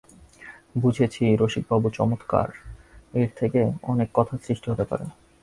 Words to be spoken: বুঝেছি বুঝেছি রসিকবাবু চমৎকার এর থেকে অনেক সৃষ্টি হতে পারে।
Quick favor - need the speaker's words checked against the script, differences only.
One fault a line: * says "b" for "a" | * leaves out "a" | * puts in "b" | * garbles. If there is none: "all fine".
* leaves out "বুঝেছি"
* puts in "কথার"